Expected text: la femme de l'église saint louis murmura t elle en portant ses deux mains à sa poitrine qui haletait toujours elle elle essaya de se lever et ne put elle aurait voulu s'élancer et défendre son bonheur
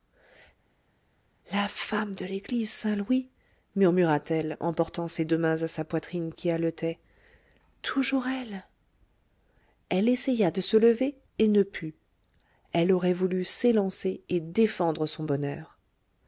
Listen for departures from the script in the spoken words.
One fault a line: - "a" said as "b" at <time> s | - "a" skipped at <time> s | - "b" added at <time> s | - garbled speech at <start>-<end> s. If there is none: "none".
none